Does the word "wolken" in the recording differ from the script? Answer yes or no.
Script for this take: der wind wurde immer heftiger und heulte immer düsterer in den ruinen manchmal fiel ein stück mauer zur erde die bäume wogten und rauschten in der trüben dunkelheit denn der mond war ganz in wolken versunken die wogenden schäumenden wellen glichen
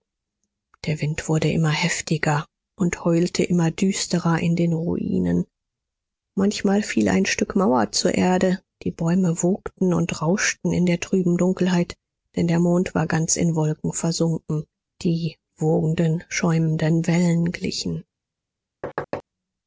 no